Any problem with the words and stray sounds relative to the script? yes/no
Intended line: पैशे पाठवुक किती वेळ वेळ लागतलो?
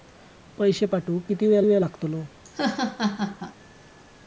yes